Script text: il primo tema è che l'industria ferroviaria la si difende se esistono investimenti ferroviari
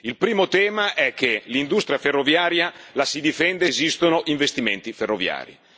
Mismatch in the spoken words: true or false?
true